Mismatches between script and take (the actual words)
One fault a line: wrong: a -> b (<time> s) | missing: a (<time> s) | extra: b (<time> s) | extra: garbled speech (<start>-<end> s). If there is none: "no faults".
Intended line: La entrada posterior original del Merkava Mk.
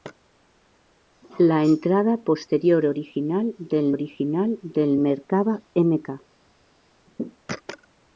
extra: original del (3.9 s)